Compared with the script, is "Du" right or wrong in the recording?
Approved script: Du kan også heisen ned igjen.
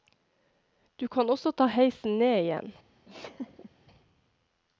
right